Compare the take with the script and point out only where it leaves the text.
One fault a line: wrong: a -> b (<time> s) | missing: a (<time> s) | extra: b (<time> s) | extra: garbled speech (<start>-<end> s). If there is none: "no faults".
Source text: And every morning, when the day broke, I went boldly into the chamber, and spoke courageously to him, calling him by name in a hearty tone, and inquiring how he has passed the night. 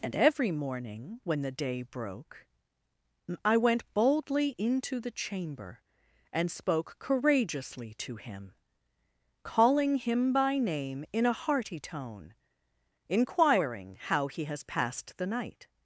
missing: and (12.3 s)